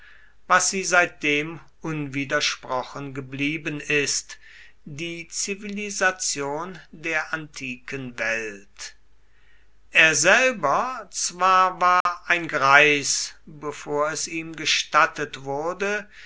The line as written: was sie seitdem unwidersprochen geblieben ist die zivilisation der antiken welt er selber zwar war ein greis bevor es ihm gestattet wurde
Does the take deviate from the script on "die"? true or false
false